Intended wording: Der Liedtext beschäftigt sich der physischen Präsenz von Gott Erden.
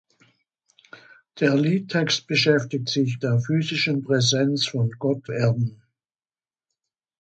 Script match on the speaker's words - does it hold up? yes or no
yes